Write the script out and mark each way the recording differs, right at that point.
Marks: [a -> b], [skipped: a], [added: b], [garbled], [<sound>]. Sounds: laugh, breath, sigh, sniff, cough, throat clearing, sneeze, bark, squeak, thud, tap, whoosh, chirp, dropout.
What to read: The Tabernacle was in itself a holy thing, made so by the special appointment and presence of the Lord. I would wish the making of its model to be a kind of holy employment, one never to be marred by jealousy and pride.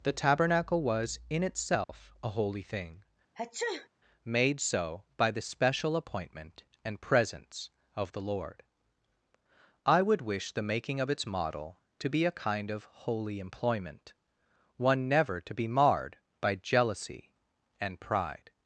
The Tabernacle was in itself [dropout] a holy thing, [sneeze] made so by the special appointment and presence of the Lord. I would wish the making of its model to be a kind of holy employment, one never to be marred by jealousy and pride.